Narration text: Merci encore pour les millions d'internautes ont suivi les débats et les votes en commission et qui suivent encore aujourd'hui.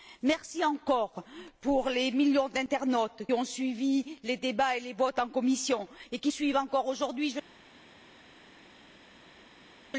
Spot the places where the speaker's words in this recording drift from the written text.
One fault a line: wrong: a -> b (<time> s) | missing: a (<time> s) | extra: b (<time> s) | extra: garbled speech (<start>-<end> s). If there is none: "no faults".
no faults